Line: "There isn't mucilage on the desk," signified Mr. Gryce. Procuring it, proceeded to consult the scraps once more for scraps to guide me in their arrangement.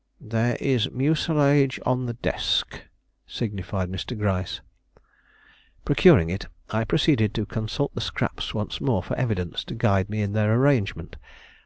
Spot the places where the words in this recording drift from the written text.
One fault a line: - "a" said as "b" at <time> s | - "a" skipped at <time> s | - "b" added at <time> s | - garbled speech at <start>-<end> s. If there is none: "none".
- "isn't" said as "is" at 0.6 s
- "I" added at 6.7 s
- "scraps" said as "evidence" at 9.2 s